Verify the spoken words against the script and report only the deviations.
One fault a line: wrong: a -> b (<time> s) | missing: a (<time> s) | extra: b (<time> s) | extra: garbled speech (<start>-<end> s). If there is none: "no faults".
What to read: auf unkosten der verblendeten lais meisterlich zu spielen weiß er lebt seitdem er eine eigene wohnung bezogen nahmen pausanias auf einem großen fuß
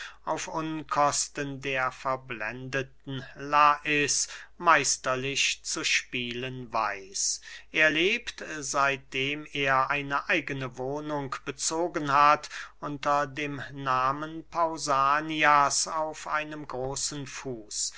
extra: hat unter dem (12.1 s)